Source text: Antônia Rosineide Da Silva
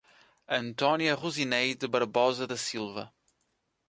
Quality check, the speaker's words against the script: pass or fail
fail